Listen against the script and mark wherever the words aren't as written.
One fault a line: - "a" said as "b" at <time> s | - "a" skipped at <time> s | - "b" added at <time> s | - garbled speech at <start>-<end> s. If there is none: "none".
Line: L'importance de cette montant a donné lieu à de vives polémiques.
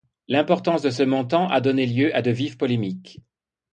- "cette" said as "ce" at 0.9 s